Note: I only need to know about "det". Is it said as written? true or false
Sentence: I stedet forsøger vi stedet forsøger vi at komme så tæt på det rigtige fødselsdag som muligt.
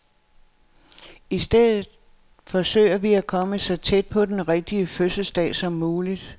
false